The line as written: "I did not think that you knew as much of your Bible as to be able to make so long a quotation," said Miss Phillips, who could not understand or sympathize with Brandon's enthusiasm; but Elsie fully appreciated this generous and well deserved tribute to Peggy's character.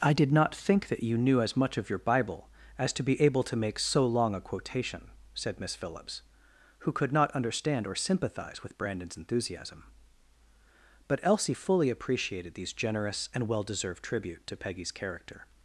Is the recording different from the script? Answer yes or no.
yes